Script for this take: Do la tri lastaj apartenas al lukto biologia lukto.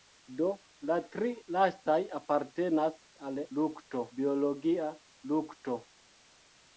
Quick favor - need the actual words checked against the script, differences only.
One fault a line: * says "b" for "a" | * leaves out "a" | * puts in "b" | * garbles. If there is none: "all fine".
all fine